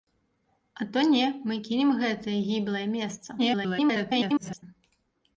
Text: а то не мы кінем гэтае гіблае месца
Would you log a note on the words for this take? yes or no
yes